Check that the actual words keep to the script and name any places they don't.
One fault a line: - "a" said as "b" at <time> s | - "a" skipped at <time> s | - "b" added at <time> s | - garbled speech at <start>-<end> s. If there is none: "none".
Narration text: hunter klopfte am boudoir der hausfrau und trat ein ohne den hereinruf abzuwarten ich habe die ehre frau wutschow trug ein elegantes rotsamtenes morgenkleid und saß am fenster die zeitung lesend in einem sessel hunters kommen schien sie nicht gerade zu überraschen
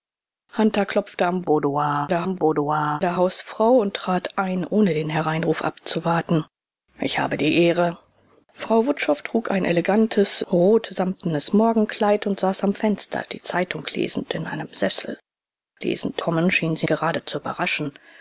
- "am boudoir der" added at 2.2 s
- "hunters" said as "lesend" at 15.8 s
- "nicht" skipped at 16.9 s